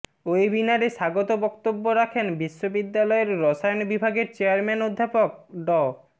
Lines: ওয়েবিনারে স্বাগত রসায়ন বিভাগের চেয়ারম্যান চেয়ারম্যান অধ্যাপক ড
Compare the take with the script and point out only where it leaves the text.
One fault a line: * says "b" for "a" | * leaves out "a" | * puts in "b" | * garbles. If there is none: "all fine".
* puts in "বক্তব্য রাখেন বিশ্ববিদ্যালয়ের"
* leaves out "চেয়ারম্যান"